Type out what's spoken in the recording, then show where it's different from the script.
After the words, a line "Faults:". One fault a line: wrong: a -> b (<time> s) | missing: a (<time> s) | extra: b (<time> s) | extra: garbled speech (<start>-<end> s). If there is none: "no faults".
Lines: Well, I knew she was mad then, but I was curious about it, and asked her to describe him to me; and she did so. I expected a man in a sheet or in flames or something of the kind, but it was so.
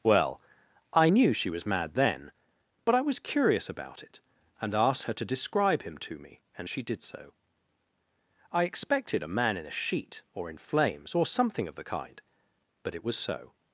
Well, I knew she was mad then, but I was curious about it, and asked her to describe him to me; and she did so. I expected a man in a sheet or in flames or something of the kind, but it was so.
Faults:
no faults